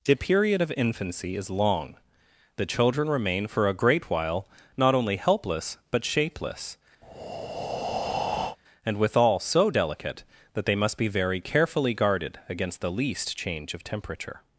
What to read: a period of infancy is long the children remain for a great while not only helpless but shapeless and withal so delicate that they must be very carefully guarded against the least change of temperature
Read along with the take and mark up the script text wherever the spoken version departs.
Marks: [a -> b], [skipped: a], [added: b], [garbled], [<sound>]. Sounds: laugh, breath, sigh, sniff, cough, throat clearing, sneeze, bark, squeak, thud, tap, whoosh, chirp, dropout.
[a -> the] period of infancy is long the children remain for a great while not only helpless but shapeless [breath] and withal so delicate that they must be very carefully guarded against the least change of temperature